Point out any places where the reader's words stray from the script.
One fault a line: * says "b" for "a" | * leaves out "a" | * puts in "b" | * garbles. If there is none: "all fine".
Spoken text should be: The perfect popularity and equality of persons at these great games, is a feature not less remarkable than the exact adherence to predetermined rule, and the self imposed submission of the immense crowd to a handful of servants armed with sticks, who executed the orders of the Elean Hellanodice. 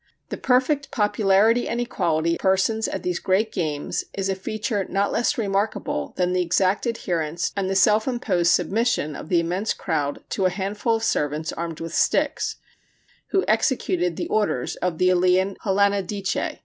* leaves out "of"
* leaves out "to predetermined rule"